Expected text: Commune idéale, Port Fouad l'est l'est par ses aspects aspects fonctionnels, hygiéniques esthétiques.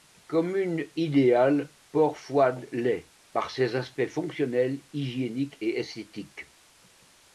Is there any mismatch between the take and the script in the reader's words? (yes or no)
yes